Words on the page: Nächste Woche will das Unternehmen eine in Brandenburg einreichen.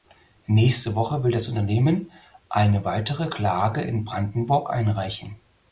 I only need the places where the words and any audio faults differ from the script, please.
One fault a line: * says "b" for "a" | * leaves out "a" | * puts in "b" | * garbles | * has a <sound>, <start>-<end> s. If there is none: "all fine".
* puts in "weitere Klage"